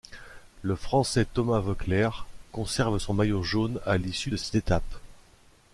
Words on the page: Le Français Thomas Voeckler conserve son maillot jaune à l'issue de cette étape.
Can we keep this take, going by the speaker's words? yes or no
yes